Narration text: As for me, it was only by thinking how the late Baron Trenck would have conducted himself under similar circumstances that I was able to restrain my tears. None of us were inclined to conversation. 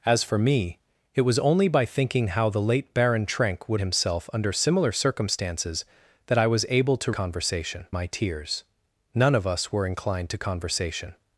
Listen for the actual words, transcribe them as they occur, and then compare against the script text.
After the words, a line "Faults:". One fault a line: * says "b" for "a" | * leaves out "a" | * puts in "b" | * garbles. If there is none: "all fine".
As for me, it was only by thinking how the late Baron Trenck would himself under similar circumstances that I was able to conversation my tears. None of us were inclined to conversation.
Faults:
* leaves out "have conducted"
* says "conversation" for "restrain"